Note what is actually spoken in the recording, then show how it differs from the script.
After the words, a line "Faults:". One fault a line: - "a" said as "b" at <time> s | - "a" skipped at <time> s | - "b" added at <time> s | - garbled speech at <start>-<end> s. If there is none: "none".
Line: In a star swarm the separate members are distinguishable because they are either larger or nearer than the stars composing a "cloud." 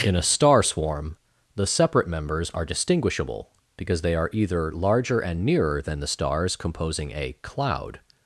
In a star swarm the separate members are distinguishable because they are either larger and nearer than the stars composing a "cloud."
Faults:
- "or" said as "and" at 5.2 s